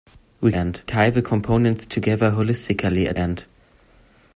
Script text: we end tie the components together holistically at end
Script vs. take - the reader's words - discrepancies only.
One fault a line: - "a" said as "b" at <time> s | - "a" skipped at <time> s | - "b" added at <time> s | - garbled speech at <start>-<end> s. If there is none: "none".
none